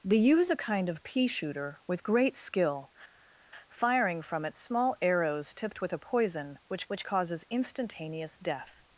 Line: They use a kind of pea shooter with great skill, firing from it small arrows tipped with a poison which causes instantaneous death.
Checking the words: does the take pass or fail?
fail